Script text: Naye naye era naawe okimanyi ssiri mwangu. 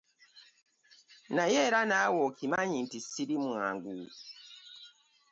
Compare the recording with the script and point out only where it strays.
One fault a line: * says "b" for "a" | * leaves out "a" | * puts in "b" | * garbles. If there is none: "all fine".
* leaves out "naye"
* puts in "nti"